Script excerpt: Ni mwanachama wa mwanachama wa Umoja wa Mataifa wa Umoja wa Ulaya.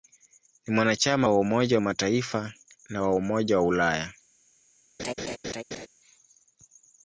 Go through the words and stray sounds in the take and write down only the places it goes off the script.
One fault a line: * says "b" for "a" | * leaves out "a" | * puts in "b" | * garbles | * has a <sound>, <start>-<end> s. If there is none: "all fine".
* leaves out "mwanachama wa"
* puts in "na"
* has a laugh, 5.0-5.9 s